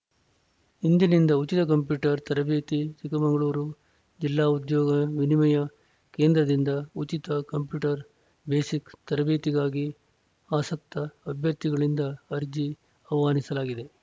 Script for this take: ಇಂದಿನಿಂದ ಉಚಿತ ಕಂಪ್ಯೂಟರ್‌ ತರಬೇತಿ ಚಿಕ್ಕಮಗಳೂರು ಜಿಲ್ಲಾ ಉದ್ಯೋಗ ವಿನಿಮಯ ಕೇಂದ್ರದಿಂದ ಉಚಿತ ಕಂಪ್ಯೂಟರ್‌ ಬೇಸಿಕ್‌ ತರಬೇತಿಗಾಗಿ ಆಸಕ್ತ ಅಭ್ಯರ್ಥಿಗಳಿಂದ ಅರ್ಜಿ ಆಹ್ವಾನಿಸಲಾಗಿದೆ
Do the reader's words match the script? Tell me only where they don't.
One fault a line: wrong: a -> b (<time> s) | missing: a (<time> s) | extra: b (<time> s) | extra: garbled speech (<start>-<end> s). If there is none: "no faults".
no faults